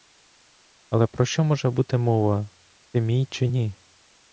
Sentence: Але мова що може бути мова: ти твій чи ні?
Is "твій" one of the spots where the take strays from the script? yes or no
yes